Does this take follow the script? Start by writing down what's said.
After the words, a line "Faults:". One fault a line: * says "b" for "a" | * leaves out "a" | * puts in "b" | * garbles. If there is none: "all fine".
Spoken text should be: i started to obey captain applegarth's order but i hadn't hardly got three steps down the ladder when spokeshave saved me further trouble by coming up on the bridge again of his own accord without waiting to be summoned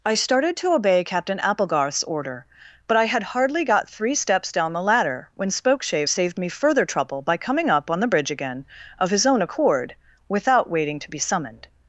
i started to obey captain applegarth's order but i had hardly got three steps down the ladder when spokeshave saved me further trouble by coming up on the bridge again of his own accord without waiting to be summoned
Faults:
* says "had" for "hadn't"